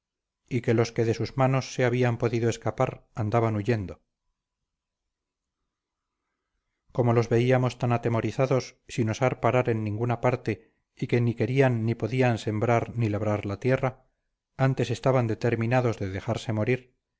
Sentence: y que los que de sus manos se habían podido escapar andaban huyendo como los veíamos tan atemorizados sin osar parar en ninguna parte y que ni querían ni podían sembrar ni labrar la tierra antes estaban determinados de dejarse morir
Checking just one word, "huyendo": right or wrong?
right